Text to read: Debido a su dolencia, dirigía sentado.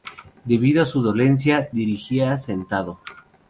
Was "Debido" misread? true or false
false